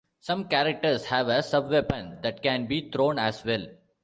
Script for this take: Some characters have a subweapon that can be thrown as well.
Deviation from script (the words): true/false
false